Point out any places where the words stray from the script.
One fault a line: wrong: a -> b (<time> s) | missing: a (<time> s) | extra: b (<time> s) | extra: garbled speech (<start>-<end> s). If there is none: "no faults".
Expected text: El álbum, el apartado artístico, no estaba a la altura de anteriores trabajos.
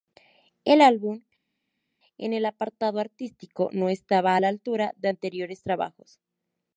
extra: en (2.2 s)